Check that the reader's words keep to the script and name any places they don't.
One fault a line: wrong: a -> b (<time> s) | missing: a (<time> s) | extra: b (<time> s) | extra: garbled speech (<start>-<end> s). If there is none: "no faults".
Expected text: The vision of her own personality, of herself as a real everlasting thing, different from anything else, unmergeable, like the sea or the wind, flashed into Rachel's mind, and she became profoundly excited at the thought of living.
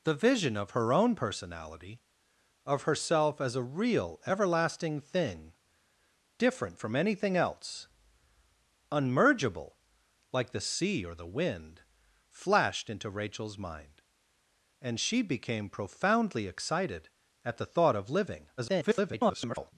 extra: garbled speech (18.6-19.7 s)